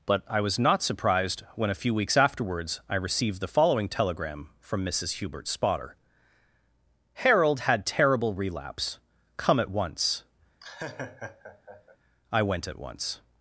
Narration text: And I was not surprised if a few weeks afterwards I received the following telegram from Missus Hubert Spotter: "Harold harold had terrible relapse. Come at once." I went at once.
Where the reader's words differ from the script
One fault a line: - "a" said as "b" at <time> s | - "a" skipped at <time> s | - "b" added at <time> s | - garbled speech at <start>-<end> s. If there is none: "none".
- "And" said as "But" at 0.1 s
- "if" said as "when" at 1.5 s
- "harold" skipped at 7.6 s